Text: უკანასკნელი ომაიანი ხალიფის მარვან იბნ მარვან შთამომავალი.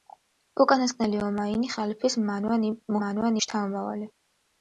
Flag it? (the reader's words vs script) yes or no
no